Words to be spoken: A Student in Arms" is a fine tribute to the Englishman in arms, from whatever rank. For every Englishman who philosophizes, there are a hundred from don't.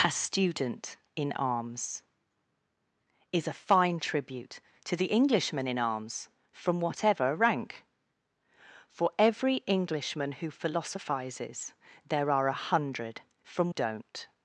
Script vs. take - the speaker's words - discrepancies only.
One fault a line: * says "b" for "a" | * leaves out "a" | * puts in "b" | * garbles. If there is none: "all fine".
all fine